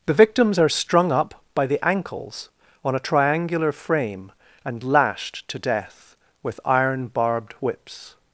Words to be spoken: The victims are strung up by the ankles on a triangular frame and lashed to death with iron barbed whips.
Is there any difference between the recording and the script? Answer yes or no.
no